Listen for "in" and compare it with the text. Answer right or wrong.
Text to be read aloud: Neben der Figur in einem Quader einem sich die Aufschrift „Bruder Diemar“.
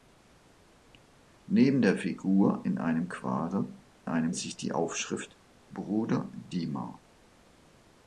right